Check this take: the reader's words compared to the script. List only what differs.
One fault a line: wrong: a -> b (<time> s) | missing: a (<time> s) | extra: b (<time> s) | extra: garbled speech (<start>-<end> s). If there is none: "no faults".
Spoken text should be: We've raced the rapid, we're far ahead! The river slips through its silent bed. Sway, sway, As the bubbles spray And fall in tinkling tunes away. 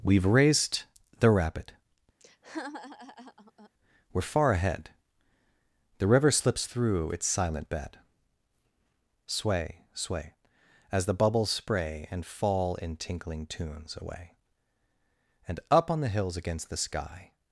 extra: And up on the hills against the sky (15.5 s)